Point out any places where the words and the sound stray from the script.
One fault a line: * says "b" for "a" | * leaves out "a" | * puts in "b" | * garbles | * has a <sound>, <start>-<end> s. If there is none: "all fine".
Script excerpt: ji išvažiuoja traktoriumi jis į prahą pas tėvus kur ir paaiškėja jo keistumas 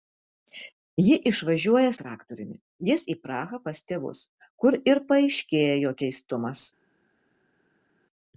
all fine